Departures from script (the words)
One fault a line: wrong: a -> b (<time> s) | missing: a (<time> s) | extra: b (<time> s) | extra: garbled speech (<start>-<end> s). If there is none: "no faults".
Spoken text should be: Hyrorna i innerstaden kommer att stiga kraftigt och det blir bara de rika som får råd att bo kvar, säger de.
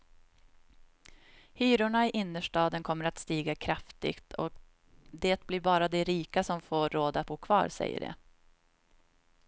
no faults